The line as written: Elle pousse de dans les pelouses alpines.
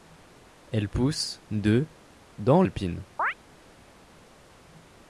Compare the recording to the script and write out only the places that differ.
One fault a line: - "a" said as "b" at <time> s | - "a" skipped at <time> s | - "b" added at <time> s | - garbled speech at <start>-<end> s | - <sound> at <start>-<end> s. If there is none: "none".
- "les pelouses" skipped at 2.6 s
- chirp at 3.2-3.3 s